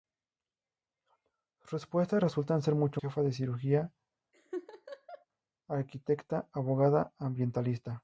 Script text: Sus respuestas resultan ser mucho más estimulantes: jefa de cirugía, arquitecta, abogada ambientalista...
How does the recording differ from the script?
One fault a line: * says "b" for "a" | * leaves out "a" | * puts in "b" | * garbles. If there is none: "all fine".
* leaves out "más estimulantes"